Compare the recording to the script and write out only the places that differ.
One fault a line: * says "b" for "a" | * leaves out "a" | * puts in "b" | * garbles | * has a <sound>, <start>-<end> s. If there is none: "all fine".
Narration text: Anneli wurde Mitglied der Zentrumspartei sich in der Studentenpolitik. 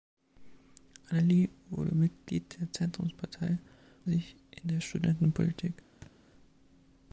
* has a thud, 6.0-6.1 s